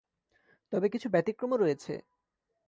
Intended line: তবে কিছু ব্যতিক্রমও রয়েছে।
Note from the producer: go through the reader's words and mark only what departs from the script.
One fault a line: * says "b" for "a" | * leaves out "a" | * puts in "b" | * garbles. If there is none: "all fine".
all fine